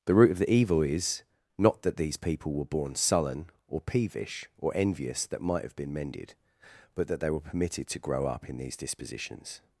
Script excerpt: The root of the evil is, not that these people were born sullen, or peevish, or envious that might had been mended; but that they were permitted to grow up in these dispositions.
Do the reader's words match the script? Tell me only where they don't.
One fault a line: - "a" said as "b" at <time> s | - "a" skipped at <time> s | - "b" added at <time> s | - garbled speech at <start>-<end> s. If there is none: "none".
- "had" said as "have" at 5.6 s